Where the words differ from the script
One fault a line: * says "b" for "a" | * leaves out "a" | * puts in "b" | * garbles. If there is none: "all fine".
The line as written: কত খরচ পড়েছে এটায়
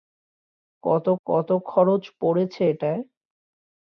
* puts in "কত"